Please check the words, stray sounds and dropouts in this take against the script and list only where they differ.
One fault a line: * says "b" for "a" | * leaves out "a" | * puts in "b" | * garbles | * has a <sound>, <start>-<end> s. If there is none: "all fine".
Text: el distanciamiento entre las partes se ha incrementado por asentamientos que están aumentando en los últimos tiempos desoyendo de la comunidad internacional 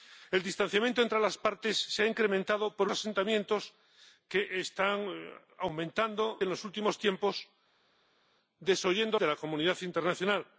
all fine